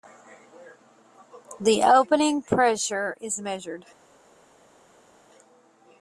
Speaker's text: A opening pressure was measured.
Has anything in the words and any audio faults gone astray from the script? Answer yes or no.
yes